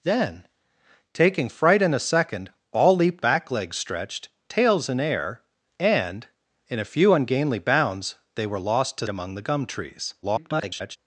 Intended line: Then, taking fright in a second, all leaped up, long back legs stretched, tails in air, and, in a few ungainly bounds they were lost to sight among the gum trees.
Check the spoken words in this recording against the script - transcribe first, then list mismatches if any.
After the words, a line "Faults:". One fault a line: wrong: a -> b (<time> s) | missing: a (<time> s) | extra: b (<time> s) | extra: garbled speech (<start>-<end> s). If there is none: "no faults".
Then, taking fright in a second, all leaped back legs stretched, tails in air, and, in a few ungainly bounds they were lost to among the gum trees. [garbled]
Faults:
missing: up long (3.2 s)
missing: sight (9.1 s)
extra: garbled speech (10.2-11.0 s)